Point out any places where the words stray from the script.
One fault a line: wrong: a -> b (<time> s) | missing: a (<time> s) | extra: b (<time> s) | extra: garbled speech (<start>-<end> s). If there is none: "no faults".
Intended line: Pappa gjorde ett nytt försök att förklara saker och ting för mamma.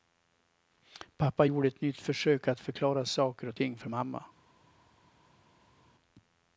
no faults